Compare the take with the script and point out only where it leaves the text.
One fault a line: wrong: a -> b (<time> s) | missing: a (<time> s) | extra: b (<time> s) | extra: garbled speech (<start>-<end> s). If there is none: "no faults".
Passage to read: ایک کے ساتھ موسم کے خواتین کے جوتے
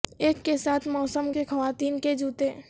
no faults